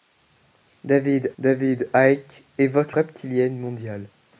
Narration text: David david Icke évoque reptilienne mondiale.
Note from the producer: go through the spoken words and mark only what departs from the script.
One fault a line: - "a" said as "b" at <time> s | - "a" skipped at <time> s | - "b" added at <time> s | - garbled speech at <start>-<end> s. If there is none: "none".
none